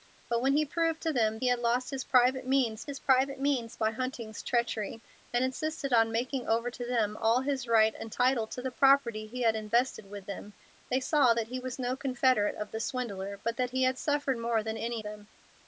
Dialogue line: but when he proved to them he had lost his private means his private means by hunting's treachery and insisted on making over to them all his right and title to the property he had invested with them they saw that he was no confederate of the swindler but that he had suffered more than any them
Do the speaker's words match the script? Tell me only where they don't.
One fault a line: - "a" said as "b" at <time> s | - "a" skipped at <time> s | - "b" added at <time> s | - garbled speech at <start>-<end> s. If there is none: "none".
none